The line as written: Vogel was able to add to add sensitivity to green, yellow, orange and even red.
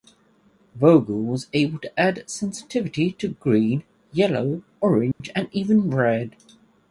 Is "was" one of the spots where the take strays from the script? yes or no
no